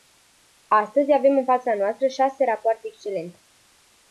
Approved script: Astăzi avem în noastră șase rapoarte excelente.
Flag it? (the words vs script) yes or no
yes